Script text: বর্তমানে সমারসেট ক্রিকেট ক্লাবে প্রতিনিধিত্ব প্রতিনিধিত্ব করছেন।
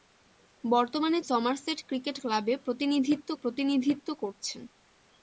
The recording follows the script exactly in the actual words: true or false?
true